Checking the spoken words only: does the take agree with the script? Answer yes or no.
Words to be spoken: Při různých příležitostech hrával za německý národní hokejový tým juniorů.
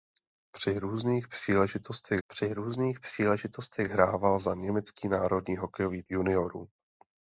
no